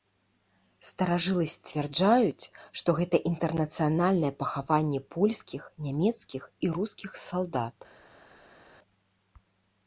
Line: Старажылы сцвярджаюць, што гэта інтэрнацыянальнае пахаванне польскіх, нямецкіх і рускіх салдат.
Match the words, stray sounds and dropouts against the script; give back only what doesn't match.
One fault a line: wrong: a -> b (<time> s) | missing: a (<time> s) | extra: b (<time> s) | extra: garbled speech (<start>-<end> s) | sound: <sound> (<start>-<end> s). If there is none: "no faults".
no faults